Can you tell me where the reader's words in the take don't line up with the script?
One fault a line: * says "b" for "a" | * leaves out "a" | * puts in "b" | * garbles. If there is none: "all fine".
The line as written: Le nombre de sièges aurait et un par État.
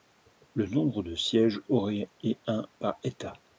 all fine